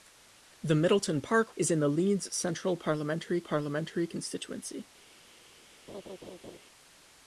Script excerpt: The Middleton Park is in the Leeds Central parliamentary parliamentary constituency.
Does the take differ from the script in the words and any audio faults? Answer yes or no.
yes